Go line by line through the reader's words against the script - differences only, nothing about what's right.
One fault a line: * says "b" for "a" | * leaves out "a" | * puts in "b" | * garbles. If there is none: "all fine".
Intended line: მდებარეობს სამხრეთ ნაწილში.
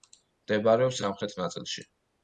all fine